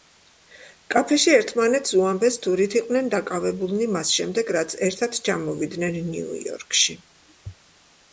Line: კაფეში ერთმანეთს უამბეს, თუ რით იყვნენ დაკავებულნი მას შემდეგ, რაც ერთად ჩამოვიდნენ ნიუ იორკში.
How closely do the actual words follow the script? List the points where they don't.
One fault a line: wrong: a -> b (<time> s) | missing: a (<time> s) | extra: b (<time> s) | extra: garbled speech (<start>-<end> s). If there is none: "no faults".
no faults